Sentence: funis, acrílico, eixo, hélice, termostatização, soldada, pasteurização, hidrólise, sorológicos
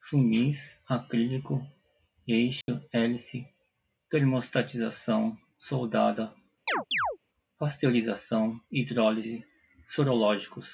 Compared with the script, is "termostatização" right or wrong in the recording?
right